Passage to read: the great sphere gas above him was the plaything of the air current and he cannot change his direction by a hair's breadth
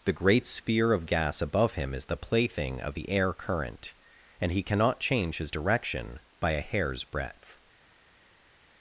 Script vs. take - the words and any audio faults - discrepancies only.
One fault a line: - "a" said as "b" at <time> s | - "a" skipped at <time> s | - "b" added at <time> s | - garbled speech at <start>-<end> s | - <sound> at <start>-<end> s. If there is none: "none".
- "of" added at 0.9 s
- "was" said as "is" at 1.9 s